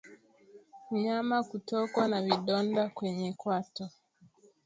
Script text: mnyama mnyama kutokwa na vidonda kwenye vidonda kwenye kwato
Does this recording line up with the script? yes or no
no